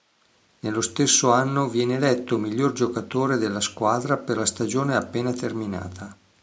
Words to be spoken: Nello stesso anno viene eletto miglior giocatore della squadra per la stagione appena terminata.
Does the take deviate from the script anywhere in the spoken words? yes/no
no